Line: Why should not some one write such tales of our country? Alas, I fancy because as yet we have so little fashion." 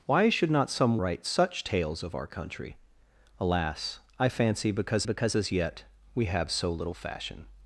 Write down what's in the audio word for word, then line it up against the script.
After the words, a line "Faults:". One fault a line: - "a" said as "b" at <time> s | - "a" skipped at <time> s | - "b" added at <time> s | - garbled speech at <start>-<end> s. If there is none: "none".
Why should not some write such tales of our country? Alas, I fancy because because as yet we have so little fashion."
Faults:
- "one" skipped at 1.0 s
- "because" added at 5.0 s